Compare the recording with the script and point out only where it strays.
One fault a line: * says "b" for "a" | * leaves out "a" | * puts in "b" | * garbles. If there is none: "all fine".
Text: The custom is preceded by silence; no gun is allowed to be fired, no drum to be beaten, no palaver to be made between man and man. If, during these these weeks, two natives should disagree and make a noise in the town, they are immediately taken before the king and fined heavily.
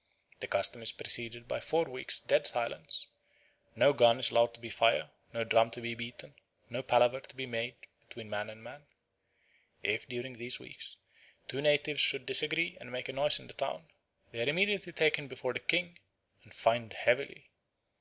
* puts in "four weeks dead"
* leaves out "these"